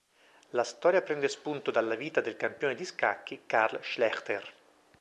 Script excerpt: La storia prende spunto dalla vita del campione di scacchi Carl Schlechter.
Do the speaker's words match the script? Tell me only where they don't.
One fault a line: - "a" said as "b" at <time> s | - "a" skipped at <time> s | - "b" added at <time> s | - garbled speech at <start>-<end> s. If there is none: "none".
none